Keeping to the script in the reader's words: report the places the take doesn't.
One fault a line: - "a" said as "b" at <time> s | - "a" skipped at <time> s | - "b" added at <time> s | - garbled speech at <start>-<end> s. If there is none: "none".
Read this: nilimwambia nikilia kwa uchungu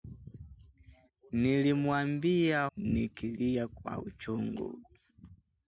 none